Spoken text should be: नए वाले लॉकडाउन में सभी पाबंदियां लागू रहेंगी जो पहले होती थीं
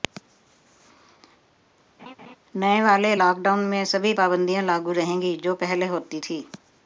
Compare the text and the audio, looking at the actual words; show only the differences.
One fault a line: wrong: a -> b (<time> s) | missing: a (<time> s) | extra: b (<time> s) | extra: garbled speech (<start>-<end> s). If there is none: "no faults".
no faults